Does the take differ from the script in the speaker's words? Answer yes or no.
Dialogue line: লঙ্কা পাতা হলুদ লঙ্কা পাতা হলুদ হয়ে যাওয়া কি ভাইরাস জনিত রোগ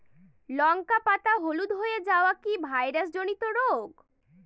yes